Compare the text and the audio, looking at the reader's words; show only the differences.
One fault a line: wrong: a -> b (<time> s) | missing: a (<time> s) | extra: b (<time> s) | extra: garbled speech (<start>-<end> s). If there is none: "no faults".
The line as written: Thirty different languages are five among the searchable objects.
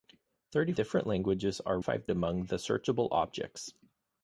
no faults